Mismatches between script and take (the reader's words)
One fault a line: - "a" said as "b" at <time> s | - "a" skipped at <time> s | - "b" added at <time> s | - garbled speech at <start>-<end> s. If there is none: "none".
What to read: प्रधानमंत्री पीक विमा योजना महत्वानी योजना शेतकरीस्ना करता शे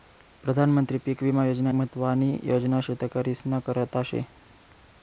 none